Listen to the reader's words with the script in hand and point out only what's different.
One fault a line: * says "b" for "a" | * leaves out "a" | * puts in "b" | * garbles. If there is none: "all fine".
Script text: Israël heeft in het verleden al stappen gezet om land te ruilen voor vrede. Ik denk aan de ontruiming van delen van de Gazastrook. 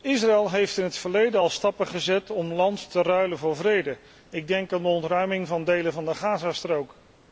all fine